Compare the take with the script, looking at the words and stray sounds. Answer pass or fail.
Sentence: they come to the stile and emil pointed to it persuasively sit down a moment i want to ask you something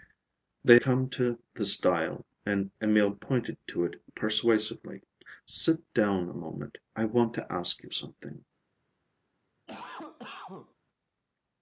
fail